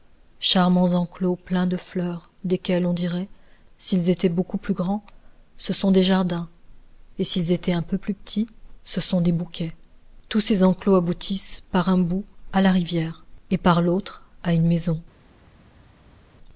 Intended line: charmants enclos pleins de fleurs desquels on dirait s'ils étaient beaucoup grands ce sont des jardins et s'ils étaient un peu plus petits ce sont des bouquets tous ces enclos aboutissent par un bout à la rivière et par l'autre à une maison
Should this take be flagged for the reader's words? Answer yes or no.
yes